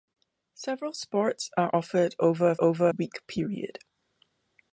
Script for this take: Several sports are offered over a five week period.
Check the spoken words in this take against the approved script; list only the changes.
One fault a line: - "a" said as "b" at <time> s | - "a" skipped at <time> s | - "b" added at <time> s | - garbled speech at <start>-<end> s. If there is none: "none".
- "five" said as "over" at 2.6 s